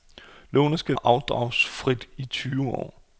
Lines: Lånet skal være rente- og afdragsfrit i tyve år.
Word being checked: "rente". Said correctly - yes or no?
no